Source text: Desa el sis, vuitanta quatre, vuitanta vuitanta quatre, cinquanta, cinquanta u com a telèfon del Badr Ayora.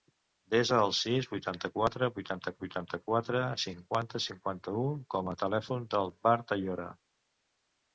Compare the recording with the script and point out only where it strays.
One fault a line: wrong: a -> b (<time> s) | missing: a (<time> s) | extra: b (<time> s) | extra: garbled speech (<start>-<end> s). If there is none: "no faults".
no faults